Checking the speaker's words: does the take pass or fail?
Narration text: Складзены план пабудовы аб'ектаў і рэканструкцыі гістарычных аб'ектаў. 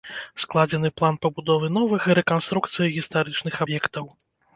fail